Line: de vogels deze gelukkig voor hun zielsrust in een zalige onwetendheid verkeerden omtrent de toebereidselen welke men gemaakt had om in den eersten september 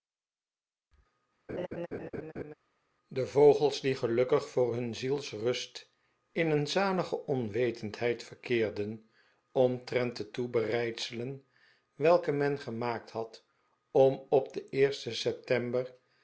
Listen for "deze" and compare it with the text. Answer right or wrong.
wrong